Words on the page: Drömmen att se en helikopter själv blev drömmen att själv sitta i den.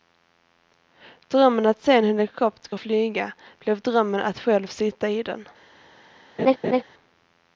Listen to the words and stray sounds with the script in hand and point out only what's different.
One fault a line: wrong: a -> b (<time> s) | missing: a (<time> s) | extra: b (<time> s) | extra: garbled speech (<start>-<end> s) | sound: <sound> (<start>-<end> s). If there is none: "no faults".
wrong: själv -> flyga (2.8 s)
sound: laugh (6.4-6.8 s)